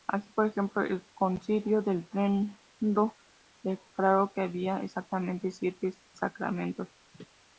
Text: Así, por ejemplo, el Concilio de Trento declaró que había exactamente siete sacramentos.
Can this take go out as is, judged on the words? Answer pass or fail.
pass